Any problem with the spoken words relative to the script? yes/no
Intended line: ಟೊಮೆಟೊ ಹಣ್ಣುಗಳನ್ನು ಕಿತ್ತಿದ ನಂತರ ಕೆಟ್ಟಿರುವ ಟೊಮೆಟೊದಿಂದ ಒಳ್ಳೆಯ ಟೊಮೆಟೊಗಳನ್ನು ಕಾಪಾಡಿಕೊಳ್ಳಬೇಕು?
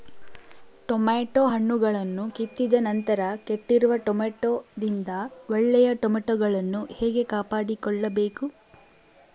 yes